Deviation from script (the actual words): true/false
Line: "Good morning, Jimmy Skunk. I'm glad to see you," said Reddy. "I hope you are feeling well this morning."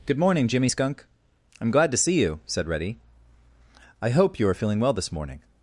false